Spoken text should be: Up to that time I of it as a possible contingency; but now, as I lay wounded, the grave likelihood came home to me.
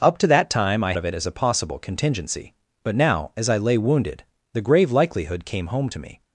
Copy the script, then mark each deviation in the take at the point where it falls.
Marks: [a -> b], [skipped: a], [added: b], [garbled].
Up to that time I of it as a possible contingency; but now, as I lay wounded, the grave likelihood came home to me.